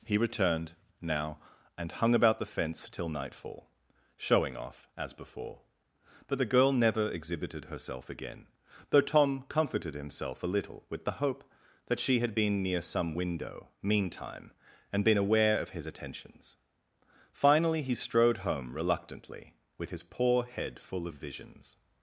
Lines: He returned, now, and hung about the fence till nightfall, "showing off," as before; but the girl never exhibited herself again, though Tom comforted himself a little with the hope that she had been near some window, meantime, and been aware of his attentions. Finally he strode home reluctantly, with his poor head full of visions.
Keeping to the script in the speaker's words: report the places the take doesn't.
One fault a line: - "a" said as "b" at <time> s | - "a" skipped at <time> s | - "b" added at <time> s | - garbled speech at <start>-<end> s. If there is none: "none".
none